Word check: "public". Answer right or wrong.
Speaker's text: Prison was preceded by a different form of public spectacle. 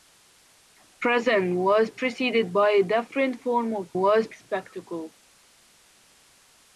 wrong